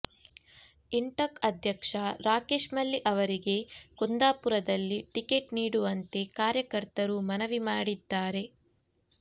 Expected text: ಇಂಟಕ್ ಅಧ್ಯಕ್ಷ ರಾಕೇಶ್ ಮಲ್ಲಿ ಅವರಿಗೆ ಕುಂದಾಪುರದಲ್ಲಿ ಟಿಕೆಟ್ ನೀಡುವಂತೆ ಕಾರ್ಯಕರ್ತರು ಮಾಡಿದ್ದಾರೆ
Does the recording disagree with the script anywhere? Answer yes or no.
yes